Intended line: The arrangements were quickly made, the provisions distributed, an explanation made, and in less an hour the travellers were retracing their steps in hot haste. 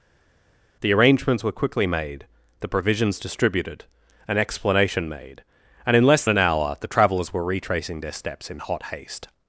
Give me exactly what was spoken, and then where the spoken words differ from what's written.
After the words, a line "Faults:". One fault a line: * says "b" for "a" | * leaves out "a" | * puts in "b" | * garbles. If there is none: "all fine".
The arrangements were quickly made, the provisions distributed, an explanation made, and in less an hour the travellers were retracing their steps in hot haste.
Faults:
all fine